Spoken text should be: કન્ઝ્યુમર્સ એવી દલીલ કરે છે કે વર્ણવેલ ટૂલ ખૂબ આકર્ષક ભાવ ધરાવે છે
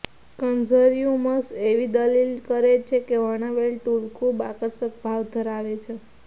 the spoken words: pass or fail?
pass